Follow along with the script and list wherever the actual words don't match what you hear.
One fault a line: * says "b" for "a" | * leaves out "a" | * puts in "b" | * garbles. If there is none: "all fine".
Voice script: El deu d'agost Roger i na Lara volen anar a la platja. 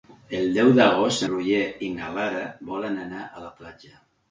all fine